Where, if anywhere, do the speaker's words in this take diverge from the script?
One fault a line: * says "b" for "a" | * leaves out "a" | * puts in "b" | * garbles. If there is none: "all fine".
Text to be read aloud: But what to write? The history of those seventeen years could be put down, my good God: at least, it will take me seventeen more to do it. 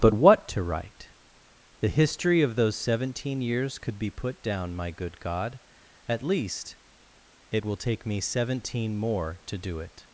all fine